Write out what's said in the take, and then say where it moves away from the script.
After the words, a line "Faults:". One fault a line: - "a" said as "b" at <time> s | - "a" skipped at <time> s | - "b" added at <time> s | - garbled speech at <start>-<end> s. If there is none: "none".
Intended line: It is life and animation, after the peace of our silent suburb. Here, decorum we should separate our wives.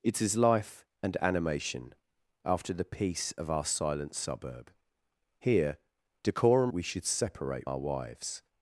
It is life and animation, after the peace of our silent suburb. Here, decorum we should separate our wives.
Faults:
none